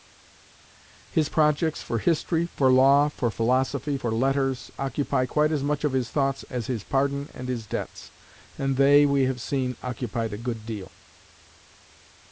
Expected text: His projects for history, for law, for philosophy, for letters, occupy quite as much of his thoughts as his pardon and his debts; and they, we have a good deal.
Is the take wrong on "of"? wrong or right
right